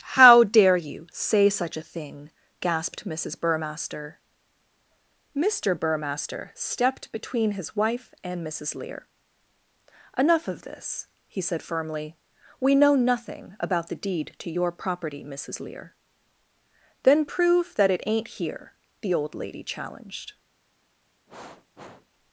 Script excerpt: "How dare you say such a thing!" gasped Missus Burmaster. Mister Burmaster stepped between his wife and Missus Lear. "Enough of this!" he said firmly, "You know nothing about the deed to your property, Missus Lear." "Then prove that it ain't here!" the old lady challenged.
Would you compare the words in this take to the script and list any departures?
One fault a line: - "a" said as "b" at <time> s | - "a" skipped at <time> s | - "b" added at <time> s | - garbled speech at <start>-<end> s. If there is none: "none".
- "You" said as "We" at 12.6 s